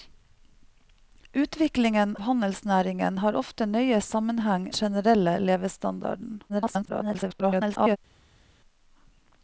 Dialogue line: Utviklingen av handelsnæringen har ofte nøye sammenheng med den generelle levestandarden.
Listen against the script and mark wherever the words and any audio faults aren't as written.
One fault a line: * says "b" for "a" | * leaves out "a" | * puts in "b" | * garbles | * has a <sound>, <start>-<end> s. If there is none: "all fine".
* leaves out "av"
* leaves out "med den"
* garbles